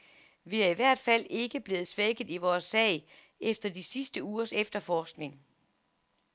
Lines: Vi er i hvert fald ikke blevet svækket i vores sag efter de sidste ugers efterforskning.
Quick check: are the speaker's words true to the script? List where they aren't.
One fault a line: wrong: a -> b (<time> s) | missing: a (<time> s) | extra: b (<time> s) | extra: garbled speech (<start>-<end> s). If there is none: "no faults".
no faults